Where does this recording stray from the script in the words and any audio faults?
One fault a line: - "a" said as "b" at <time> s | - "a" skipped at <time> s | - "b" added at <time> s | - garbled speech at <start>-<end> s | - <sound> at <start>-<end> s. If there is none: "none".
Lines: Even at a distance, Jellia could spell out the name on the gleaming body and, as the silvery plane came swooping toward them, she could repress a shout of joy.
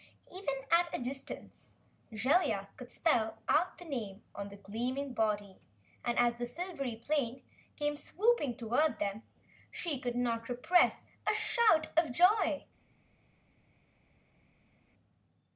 - "not" added at 10.1 s